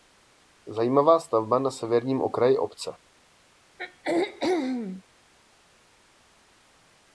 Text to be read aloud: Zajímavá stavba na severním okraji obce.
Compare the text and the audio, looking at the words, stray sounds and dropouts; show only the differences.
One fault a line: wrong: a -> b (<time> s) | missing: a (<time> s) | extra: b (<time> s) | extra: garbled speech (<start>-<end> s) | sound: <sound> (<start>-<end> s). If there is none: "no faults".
sound: throat clearing (3.8-5.0 s)